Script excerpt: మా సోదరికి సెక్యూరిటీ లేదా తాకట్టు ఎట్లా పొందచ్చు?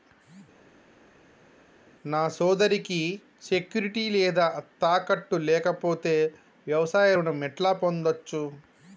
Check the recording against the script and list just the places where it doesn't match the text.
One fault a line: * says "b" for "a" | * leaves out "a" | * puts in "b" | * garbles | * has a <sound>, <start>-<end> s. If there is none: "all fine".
* says "నా" for "మా"
* puts in "లేకపోతే వ్యవసాయ రుణం"